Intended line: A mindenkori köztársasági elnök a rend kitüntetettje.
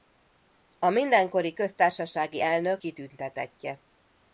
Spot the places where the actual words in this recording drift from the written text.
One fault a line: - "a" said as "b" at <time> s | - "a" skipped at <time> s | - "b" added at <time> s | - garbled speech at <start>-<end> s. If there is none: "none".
- "a rend" skipped at 2.8 s